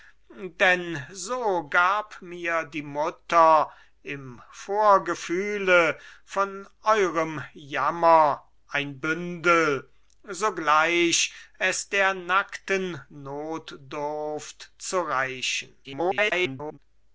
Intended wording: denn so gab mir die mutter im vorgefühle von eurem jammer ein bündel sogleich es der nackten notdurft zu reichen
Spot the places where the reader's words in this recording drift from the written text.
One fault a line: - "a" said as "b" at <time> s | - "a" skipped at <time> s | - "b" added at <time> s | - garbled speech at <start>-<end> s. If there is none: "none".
- garbled speech at 15.8-16.8 s